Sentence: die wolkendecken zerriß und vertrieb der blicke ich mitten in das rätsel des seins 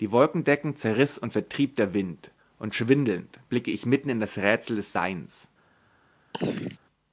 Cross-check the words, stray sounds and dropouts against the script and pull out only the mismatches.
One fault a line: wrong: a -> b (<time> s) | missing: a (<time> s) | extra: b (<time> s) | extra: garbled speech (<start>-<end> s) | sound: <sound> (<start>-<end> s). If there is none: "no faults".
extra: wind und schwindelnd (1.9 s)
sound: throat clearing (6.3-6.8 s)